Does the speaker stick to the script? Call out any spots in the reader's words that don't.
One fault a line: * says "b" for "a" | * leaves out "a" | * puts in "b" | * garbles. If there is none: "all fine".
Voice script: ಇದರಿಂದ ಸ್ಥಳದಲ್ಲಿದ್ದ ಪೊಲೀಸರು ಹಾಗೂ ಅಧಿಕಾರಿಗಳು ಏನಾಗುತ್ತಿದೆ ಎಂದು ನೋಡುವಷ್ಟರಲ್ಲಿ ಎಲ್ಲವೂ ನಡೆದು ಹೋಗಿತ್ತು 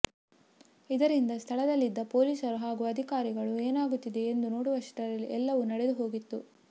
all fine